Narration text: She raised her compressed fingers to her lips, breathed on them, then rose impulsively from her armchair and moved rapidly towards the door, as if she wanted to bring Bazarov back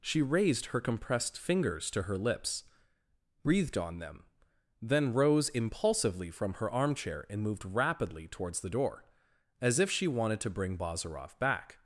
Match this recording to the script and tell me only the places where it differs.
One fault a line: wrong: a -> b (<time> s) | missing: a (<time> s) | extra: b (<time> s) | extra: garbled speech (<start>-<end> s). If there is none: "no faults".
no faults